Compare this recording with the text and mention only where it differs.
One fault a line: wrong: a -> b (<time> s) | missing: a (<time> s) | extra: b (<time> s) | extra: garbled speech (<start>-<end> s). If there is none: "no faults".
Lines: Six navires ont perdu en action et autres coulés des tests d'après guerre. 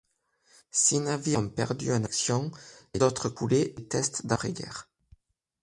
no faults